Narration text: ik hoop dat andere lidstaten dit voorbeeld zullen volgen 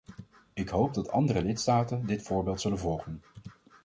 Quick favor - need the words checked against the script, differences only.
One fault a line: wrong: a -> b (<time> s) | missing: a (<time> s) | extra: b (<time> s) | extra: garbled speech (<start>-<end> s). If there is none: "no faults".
no faults